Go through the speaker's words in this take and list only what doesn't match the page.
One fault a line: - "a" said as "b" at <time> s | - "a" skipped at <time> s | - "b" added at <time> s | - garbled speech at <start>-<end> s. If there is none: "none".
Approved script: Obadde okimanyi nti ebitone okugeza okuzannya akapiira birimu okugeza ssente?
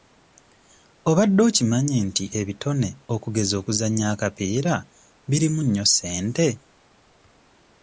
- "okugeza" said as "nnyo" at 5.6 s